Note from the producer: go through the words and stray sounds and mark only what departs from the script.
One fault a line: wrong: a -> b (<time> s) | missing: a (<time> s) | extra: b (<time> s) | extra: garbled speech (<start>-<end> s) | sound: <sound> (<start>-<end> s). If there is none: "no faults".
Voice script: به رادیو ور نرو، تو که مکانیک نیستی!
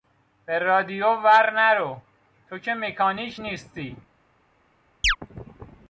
sound: chirp (5.0-5.2 s)